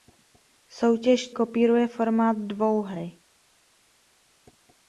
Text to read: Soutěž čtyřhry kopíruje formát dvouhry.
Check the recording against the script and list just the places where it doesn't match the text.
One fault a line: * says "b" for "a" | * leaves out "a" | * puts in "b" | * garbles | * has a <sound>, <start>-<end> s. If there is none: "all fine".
* leaves out "čtyřhry"